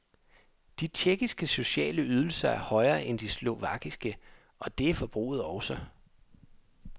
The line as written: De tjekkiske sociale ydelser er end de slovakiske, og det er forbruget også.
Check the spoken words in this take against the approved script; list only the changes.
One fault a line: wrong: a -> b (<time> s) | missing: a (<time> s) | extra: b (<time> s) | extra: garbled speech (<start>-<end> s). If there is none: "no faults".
extra: højere (2.6 s)